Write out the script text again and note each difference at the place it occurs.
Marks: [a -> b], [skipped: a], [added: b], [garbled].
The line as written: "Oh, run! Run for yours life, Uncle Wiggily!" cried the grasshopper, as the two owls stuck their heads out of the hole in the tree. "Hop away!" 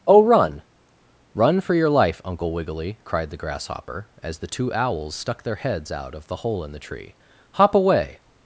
"Oh, run! Run for [yours -> your] life, Uncle Wiggily!" cried the grasshopper, as the two owls stuck their heads out of the hole in the tree. "Hop away!"